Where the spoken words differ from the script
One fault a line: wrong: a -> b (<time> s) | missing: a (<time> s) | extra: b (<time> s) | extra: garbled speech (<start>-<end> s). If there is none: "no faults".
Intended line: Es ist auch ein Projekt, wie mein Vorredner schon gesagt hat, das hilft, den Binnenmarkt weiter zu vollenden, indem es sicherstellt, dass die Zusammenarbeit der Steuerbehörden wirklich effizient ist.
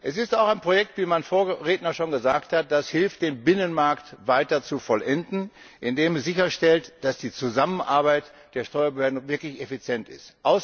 no faults